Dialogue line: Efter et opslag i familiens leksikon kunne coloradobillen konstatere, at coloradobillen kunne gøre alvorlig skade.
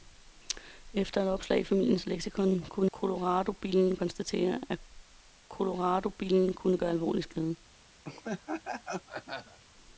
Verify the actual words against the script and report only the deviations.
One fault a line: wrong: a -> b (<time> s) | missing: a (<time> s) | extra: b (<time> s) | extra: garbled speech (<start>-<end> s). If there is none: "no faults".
no faults